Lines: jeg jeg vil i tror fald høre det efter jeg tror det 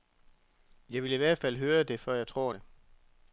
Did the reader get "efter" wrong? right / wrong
wrong